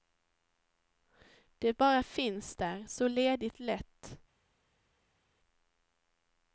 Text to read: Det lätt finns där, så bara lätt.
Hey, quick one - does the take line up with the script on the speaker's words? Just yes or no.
no